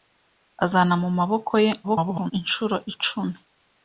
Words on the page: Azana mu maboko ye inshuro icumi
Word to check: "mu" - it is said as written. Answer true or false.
true